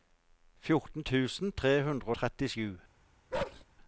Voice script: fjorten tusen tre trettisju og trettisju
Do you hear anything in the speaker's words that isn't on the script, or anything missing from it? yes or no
yes